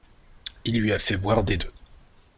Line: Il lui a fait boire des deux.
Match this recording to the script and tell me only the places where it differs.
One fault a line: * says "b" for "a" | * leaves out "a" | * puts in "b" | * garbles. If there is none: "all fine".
all fine